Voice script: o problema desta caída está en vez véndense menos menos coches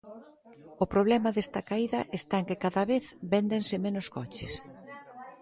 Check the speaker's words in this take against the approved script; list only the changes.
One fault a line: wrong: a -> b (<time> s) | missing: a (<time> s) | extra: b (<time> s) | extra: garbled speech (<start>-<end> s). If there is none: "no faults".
extra: que cada (2.5 s)
missing: menos (4.1 s)